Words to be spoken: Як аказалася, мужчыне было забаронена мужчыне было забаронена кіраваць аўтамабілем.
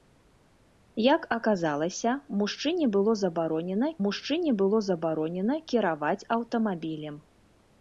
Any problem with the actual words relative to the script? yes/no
no